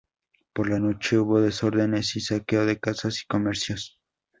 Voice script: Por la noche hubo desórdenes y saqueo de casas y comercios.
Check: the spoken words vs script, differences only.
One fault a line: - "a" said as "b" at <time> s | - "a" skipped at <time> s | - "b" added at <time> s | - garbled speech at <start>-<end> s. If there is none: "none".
none